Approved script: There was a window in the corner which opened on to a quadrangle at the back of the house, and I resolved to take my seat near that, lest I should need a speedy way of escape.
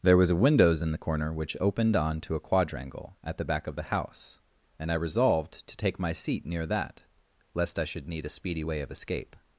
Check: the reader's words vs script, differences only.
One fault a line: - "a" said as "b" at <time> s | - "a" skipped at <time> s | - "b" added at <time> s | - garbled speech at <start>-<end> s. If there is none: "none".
- "window" said as "windows" at 0.3 s